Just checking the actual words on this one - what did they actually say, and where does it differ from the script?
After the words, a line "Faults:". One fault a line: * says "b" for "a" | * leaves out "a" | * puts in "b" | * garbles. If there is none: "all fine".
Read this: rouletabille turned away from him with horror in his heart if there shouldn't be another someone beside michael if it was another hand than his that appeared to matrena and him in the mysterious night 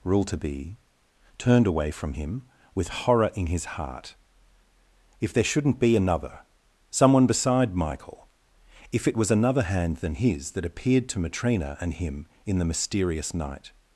rouletabille turned away from him with horror in his heart if there shouldn't be another someone beside michael if it was another hand than his that appeared to matrena and him in the mysterious night
Faults:
all fine